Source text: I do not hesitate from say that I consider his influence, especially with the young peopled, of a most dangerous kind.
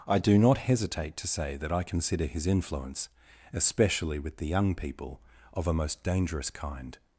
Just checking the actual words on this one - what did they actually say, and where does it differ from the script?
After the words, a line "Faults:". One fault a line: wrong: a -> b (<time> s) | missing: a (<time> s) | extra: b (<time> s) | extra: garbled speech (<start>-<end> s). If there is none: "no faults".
I do not hesitate to say that I consider his influence, especially with the young people, of a most dangerous kind.
Faults:
wrong: from -> to (1.2 s)
wrong: peopled -> people (4.7 s)